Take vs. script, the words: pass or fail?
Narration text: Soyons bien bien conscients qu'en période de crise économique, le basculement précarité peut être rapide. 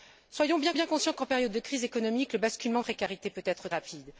pass